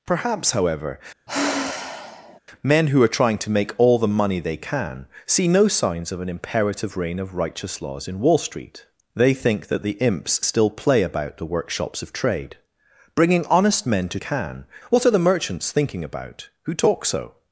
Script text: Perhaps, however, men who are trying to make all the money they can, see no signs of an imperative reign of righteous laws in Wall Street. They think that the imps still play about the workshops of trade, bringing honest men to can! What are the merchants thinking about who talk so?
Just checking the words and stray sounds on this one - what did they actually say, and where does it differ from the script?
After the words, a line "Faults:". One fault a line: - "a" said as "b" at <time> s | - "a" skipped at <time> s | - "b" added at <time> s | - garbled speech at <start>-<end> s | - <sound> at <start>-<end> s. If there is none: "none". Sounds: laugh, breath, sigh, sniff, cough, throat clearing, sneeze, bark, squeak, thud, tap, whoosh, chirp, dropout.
Perhaps, however, men who are trying to make all the money they can, see no signs of an imperative reign of righteous laws in Wall Street. They think that the imps still play about the workshops of trade, bringing honest men to can! What are the merchants thinking about who talk so?
Faults:
- sigh at 1.3-2.4 s